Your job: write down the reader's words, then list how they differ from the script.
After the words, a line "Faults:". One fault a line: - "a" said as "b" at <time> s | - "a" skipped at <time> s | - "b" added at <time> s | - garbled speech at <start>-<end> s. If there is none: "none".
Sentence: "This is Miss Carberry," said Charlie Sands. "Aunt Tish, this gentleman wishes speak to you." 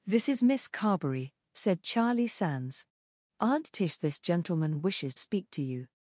"This is Miss Carberry," said Charlie Sands. "Aunt Tish, this gentleman wishes speak to you."
Faults:
none